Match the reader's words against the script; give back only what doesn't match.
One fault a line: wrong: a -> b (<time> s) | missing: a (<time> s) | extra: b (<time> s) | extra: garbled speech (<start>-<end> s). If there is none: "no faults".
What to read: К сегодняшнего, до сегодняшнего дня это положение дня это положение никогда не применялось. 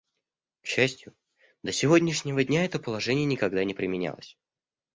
wrong: сегодняшнего -> счастью (0.7 s)
missing: дня это положение (3.3 s)